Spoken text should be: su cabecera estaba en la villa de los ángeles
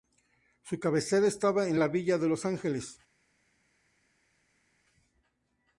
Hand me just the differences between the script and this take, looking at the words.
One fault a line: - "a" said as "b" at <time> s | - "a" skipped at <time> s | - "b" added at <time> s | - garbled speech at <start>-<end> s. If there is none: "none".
none